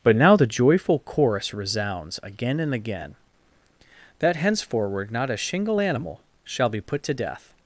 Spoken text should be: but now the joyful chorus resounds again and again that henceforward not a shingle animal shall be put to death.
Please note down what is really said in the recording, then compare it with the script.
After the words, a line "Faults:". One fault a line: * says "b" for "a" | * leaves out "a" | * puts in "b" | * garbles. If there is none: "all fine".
but now the joyful chorus resounds again and again that henceforward not a shingle animal shall be put to death.
Faults:
all fine